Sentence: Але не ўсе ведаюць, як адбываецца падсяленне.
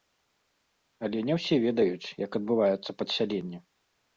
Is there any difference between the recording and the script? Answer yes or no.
no